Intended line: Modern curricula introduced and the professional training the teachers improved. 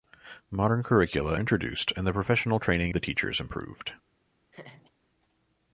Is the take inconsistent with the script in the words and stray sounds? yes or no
yes